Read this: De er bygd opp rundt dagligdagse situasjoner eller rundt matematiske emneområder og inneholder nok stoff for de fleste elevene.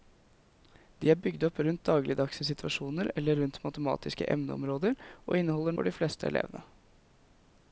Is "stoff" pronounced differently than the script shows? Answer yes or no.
yes